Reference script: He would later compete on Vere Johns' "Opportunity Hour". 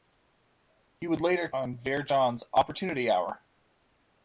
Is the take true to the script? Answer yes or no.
no